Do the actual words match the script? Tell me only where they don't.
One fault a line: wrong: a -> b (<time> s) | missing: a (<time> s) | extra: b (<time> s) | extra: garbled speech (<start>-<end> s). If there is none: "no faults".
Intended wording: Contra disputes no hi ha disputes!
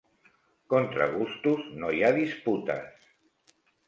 wrong: disputes -> gustos (1.2 s)